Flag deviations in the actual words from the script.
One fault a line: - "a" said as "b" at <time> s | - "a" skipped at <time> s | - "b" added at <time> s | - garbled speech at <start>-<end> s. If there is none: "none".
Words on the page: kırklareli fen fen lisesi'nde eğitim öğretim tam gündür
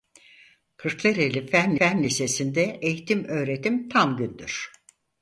none